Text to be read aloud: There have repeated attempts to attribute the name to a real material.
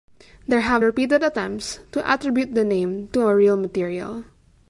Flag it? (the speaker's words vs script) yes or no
no